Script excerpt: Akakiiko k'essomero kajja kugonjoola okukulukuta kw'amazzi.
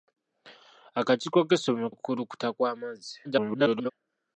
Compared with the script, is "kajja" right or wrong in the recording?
wrong